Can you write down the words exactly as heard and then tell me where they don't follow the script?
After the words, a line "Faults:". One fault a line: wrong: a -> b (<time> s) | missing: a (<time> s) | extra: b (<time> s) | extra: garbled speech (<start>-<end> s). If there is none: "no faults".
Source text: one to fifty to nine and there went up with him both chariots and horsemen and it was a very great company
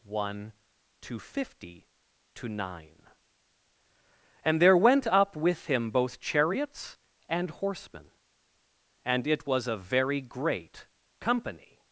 one to fifty to nine and there went up with him both chariots and horsemen and it was a very great company
Faults:
no faults